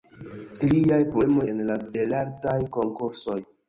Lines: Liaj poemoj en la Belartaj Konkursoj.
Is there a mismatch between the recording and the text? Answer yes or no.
no